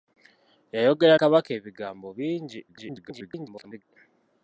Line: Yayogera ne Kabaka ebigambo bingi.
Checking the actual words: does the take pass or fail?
fail